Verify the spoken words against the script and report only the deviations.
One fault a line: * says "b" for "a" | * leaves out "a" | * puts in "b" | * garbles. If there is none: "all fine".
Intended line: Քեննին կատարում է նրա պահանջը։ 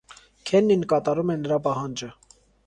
all fine